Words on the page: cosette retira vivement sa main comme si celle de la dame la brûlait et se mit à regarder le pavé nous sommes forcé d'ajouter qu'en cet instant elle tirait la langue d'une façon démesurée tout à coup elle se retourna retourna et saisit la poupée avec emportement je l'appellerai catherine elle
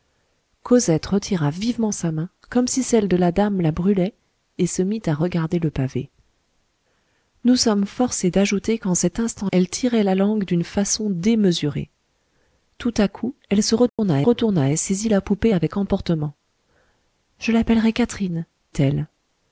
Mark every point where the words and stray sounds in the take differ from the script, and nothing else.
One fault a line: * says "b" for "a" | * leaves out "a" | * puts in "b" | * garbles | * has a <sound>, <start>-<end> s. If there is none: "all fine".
* has a dropout, 13.9-14.0 s